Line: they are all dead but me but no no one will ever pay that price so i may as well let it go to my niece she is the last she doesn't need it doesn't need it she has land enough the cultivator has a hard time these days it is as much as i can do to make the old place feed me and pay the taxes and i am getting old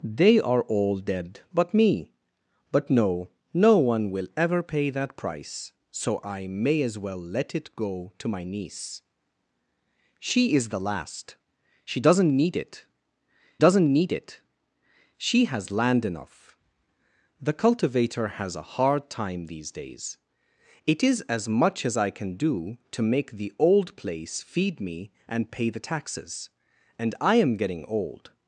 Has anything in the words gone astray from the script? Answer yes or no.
no